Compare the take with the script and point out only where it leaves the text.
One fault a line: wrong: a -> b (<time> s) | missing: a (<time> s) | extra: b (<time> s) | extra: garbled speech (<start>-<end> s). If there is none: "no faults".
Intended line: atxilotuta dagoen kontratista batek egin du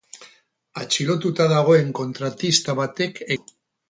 missing: egin (3.2 s)